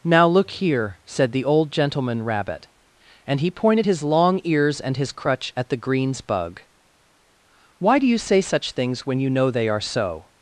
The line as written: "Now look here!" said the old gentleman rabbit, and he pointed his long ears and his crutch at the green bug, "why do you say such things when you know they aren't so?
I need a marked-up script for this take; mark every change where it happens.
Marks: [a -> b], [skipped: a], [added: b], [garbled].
"Now look here!" said the old gentleman rabbit, and he pointed his long ears and his crutch at the [green -> greens] bug, "why do you say such things when you know they [aren't -> are] so?